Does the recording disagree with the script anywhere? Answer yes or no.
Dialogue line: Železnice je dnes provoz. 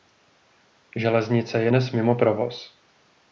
yes